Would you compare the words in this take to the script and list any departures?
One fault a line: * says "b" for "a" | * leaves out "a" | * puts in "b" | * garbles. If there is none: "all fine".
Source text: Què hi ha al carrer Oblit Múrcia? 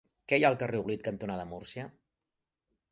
* puts in "cantonada"